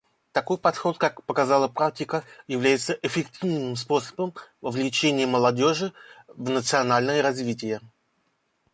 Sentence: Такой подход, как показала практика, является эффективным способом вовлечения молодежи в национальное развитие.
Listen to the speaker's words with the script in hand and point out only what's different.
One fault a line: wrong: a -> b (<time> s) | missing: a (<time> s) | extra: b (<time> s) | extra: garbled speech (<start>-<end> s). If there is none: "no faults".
no faults